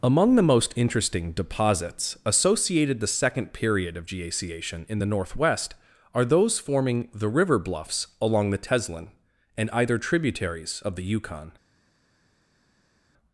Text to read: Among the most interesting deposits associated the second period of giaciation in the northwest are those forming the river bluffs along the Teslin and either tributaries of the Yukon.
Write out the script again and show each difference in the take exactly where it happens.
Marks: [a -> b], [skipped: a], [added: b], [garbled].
Among the most interesting deposits associated the second period of giaciation in the northwest are those forming the river bluffs along the Teslin and either tributaries of the Yukon.